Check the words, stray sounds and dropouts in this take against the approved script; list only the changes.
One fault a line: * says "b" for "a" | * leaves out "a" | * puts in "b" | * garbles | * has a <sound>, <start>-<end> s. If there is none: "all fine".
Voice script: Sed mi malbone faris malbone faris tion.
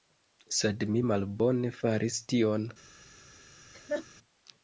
* leaves out "malbone faris"
* has a laugh, 3.7-4.1 s